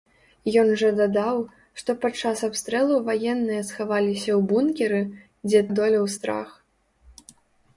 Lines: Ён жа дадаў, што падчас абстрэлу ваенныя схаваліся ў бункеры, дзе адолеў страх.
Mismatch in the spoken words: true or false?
false